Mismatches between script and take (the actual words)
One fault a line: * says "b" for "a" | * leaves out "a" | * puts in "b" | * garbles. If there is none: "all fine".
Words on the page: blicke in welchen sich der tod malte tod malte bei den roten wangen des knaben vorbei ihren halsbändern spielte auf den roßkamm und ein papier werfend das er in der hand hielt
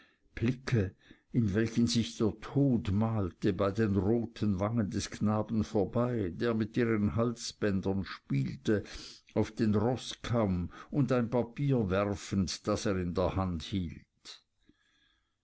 * leaves out "tod malte"
* puts in "der mit"